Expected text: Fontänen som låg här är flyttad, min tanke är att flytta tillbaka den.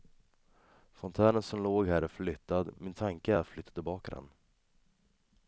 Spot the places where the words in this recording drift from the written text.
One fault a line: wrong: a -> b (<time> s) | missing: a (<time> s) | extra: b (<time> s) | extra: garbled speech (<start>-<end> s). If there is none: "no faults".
no faults